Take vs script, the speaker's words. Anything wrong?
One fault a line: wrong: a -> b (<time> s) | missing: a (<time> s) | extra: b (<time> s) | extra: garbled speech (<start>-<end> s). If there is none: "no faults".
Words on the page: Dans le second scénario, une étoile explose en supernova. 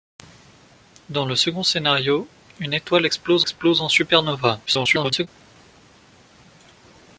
extra: explose (3.4 s)
extra: garbled speech (4.7-5.3 s)